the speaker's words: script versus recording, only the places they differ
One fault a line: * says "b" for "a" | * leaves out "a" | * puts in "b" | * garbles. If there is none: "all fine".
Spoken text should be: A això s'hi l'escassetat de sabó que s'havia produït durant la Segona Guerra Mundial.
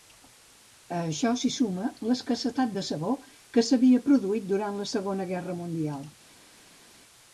* puts in "suma"